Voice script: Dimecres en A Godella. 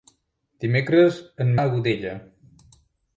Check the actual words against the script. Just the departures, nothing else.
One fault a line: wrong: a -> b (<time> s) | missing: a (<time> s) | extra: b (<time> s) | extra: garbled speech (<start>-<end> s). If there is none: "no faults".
no faults